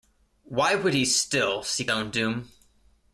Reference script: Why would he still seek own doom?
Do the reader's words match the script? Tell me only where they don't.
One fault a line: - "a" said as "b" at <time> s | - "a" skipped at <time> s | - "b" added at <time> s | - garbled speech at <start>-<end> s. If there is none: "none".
none